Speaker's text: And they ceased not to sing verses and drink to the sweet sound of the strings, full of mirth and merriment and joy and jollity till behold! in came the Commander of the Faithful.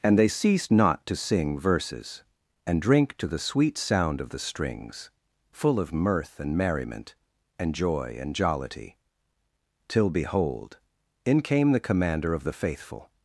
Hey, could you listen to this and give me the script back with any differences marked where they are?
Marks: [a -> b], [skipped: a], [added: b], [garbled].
And they ceased not to sing verses and drink to the sweet sound of the strings, full of mirth and merriment and joy and jollity till behold! in came the Commander of the Faithful.